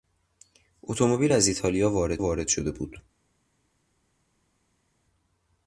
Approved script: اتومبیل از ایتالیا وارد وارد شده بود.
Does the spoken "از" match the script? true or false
true